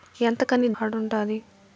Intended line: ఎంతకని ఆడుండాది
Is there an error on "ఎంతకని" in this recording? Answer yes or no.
no